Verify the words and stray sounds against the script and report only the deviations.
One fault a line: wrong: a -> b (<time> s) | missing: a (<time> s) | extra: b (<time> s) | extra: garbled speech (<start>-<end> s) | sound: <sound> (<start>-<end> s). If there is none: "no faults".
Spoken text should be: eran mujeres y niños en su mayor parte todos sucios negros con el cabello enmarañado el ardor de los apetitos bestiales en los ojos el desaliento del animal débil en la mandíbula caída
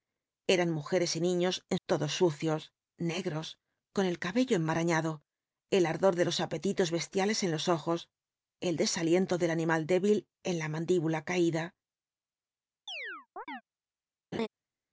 missing: su mayor parte (1.8 s)
sound: chirp (12.9-13.6 s)
sound: laugh (14.3-14.5 s)